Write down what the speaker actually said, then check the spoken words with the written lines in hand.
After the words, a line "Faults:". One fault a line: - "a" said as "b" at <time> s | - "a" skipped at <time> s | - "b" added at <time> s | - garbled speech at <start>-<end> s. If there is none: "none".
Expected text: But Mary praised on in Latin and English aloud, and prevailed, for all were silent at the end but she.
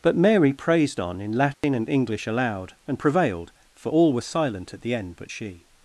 But Mary praised on in Latin and English aloud, and prevailed, for all were silent at the end but she.
Faults:
none